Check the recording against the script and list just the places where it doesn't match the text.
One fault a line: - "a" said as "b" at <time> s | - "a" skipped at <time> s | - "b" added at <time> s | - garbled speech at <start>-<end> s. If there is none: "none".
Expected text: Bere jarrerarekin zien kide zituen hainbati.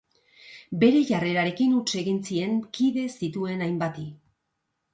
- "huts egin" added at 1.8 s